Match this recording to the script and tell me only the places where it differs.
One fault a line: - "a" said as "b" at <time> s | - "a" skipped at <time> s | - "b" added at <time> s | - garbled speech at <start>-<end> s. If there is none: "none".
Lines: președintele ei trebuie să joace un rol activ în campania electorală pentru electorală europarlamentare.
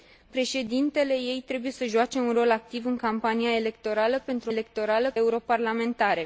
none